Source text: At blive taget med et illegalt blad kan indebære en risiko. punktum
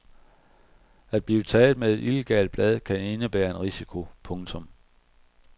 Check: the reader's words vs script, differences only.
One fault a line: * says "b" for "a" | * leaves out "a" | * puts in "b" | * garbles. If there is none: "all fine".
all fine